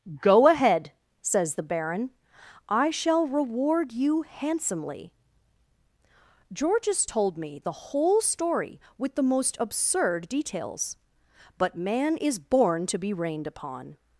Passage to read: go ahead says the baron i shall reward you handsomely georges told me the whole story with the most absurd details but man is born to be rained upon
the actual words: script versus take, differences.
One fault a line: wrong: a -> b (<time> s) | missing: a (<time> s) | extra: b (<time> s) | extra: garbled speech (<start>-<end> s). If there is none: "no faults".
no faults